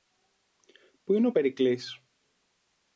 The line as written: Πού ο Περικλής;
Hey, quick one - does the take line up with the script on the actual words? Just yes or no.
no